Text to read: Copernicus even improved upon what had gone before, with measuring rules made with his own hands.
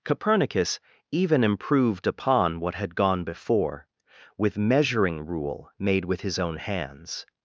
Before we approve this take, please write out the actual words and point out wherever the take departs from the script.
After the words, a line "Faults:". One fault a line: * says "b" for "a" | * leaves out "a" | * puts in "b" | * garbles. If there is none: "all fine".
Copernicus even improved upon what had gone before, with measuring rule made with his own hands.
Faults:
* says "rule" for "rules"